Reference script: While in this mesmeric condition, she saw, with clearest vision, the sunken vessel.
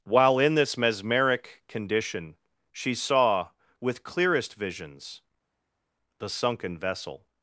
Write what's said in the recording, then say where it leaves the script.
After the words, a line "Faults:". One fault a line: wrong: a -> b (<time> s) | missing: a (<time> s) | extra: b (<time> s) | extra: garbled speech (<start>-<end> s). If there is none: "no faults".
While in this mesmeric condition, she saw, with clearest visions, the sunken vessel.
Faults:
wrong: vision -> visions (4.5 s)